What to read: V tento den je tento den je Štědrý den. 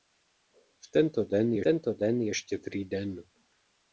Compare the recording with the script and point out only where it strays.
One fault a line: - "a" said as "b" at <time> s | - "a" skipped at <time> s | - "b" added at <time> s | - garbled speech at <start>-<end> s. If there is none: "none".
none